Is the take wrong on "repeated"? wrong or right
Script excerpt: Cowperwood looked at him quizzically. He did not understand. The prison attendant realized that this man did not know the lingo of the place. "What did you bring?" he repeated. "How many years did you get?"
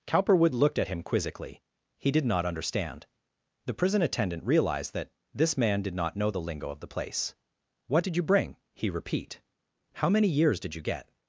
wrong